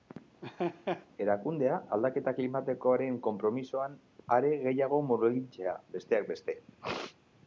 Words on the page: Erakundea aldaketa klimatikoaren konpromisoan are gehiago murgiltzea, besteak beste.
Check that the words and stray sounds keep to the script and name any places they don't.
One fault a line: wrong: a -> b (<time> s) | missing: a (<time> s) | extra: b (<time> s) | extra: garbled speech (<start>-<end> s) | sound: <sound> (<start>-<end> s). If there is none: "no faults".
sound: laugh (0.4-1.1 s)